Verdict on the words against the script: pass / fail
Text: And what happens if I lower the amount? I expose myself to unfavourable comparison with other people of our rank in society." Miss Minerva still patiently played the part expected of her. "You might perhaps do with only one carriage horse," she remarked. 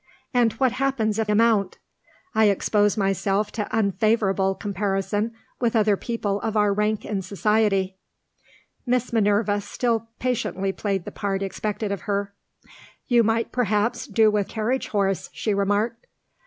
fail